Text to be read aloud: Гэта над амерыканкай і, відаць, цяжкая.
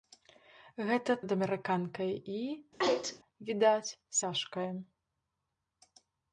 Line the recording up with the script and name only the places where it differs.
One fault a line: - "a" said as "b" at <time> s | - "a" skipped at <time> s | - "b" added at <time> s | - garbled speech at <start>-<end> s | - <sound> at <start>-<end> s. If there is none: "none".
- sneeze at 2.8-3.2 s